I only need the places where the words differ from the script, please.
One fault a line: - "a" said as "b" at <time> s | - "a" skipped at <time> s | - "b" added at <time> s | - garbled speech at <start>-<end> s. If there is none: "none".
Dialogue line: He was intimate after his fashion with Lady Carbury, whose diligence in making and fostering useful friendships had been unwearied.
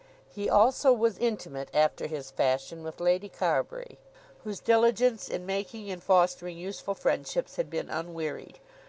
- "also" added at 0.5 s